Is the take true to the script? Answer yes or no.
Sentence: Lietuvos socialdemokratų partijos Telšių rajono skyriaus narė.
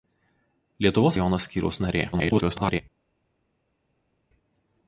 no